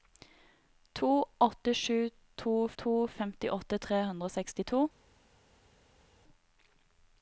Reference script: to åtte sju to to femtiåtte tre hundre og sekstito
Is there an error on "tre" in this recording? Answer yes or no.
no